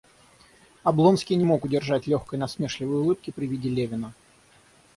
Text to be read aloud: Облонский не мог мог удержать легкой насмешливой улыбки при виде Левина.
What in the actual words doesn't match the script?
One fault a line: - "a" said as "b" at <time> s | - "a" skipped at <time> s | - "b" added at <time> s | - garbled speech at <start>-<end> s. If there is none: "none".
- "мог" skipped at 1.7 s